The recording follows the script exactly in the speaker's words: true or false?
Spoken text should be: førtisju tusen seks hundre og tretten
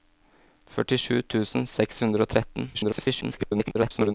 false